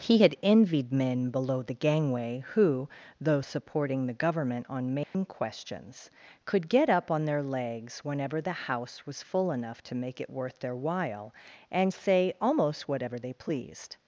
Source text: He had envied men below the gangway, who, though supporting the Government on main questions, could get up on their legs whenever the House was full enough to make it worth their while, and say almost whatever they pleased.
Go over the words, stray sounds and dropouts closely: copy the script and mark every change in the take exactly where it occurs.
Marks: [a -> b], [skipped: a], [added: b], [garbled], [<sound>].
He had envied men below the gangway, who, though supporting the Government on main [dropout] questions, could get up on their legs whenever the House was full enough to make it worth their while, and say almost whatever they pleased.